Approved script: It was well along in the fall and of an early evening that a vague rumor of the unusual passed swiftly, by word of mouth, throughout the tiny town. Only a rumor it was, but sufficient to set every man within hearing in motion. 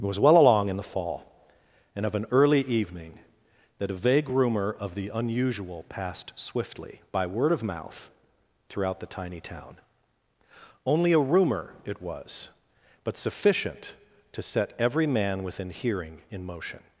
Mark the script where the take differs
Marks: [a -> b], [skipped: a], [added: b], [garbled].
It was well along in the fall and of an early evening that a vague rumor of the unusual passed swiftly, by word of mouth, throughout the tiny town. Only a rumor it was, but sufficient to set every man within hearing in motion.